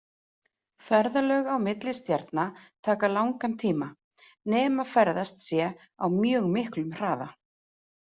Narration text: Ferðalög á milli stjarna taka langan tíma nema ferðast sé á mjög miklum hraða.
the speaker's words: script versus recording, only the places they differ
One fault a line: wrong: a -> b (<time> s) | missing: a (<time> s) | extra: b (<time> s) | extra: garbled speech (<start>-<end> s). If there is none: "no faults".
no faults